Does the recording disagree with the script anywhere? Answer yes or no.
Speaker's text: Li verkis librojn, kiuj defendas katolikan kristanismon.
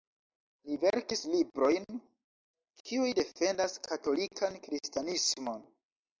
no